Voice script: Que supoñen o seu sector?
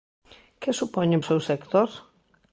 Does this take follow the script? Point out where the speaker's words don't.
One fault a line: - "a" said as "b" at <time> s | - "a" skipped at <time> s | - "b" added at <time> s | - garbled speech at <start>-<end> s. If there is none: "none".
none